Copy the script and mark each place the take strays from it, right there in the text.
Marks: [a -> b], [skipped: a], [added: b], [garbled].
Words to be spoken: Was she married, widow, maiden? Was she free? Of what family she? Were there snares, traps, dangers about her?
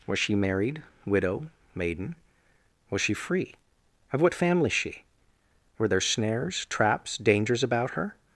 Was she married, widow, maiden? Was she free? Of what family she? Were there snares, traps, dangers about her?